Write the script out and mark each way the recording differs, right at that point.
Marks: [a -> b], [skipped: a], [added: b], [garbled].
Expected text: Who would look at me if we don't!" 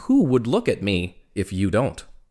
Who would look at me if [we -> you] don't!"